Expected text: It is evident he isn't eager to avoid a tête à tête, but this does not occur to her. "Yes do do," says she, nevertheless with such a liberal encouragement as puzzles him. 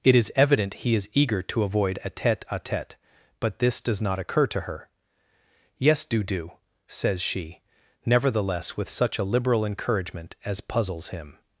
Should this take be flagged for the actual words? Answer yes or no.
yes